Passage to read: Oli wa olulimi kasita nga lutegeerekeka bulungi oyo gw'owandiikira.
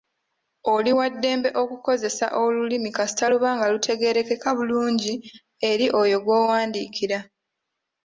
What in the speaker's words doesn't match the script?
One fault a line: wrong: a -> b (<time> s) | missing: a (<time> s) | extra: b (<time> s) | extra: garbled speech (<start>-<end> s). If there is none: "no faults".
extra: ddembe okukozesa (1.1 s)
extra: luba (3.3 s)
extra: eri (5.7 s)